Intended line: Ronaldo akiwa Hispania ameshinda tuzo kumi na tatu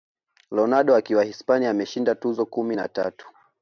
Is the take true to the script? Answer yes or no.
yes